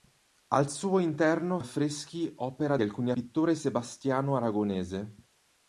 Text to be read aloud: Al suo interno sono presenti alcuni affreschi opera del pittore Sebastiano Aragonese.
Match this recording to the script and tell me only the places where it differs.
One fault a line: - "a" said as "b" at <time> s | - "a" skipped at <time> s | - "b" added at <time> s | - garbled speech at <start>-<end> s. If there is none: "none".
- "sono presenti alcuni" skipped at 1.6 s
- "del" said as "alcuni" at 2.8 s